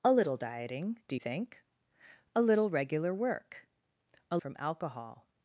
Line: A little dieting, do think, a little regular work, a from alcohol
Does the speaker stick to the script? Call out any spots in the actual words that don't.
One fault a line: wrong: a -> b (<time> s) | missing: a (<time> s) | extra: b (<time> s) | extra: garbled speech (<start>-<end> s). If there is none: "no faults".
no faults